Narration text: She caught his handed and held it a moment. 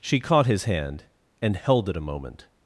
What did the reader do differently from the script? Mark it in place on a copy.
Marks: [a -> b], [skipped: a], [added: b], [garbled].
She caught his [handed -> hand] and held it a moment.